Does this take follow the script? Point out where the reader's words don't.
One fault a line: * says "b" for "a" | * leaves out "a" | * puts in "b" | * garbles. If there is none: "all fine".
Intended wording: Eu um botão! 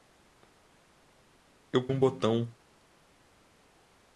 all fine